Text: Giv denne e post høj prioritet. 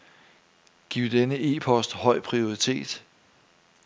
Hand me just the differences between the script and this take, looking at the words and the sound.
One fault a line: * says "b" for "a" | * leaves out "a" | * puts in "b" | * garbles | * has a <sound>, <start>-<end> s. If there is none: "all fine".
all fine